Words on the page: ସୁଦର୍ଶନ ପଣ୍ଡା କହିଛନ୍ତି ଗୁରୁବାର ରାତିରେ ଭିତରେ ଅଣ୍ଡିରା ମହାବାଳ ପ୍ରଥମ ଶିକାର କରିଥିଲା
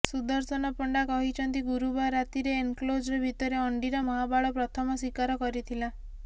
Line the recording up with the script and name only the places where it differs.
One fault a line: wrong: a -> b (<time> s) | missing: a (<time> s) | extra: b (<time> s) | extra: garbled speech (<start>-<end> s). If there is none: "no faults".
extra: ଏନକ୍ଲୋଜର (2.6 s)